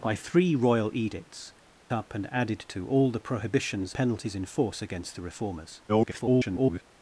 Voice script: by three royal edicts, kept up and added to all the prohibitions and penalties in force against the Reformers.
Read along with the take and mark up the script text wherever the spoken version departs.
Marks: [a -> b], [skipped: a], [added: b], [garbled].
by three royal edicts, [skipped: kept] up and added to all the prohibitions [skipped: and] penalties in force against the Reformers. [garbled]